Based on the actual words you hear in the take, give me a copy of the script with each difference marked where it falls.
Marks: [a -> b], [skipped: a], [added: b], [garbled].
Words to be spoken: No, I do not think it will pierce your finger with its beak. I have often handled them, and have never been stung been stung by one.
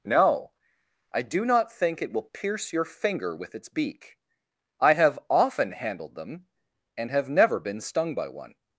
No, I do not think it will pierce your finger with its beak. I have often handled them, and have never been stung [skipped: been stung] by one.